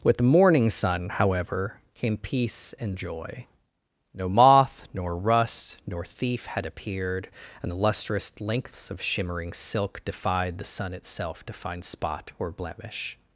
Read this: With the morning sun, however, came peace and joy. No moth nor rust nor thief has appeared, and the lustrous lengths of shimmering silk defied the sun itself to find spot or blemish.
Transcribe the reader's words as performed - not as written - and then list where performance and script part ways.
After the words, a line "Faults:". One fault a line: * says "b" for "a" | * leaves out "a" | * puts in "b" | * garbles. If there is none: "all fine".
With the morning sun, however, came peace and joy. No moth nor rust nor thief had appeared, and the lustrous lengths of shimmering silk defied the sun itself to find spot or blemish.
Faults:
* says "had" for "has"